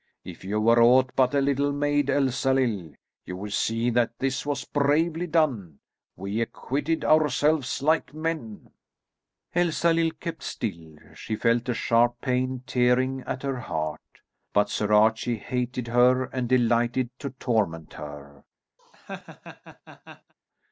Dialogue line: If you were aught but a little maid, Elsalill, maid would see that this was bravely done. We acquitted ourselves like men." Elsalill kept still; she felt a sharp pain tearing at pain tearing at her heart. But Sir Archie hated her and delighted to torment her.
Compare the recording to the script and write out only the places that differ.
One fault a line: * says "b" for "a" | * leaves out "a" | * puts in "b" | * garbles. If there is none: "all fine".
* says "you" for "maid"
* leaves out "pain tearing at"